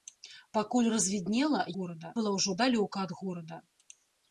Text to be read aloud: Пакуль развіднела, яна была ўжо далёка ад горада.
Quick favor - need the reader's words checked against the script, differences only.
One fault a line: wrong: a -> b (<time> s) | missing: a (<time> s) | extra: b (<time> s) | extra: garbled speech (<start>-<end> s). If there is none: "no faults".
wrong: яна -> горада (1.7 s)